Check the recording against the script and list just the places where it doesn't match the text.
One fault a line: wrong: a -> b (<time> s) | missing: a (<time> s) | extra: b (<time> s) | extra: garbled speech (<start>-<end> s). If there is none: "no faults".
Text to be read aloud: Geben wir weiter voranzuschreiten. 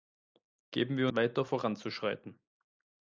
no faults